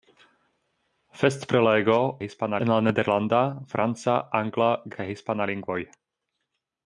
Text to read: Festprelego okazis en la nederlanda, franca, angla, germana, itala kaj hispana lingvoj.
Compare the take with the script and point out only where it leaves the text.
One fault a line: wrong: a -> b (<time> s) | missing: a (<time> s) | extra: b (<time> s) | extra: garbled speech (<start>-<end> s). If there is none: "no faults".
wrong: okazis -> hispana (2.2 s)
missing: germana itala (4.7 s)